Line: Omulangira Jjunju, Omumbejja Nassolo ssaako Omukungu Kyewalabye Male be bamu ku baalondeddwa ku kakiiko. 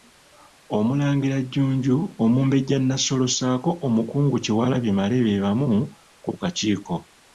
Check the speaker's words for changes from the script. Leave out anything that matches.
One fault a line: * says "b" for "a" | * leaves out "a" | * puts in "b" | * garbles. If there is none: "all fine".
* leaves out "baalondeddwa"